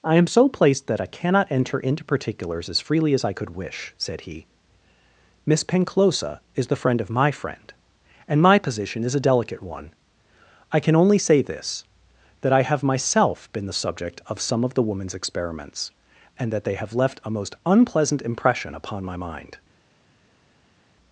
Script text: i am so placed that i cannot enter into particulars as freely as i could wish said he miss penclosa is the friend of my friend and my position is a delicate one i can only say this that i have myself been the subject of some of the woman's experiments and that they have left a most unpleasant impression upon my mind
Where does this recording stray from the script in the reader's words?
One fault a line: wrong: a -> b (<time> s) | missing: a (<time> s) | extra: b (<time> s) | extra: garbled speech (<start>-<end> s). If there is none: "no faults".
no faults